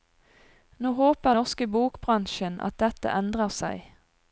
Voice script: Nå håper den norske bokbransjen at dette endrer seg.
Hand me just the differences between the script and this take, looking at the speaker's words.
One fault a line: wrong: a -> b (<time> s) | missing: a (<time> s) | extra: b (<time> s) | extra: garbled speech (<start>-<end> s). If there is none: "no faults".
missing: den (1.4 s)